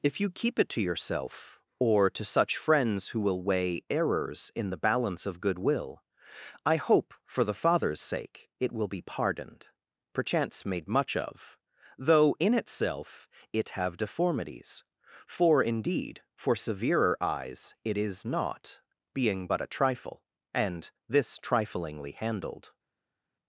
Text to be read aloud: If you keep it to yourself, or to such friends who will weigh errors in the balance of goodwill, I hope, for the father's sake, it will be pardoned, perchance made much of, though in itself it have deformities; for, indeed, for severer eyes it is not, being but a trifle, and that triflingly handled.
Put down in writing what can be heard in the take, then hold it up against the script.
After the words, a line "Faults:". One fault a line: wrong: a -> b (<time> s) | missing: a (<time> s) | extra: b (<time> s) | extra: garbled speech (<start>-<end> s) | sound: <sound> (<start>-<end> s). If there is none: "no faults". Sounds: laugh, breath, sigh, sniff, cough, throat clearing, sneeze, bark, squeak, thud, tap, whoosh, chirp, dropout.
If you keep it to yourself, or to such friends who will weigh errors in the balance of goodwill, I hope, for the father's sake, it will be pardoned, perchance made much of, though in itself it have deformities; for, indeed, for severer eyes it is not, being but a trifle, and this triflingly handled.
Faults:
wrong: that -> this (21.1 s)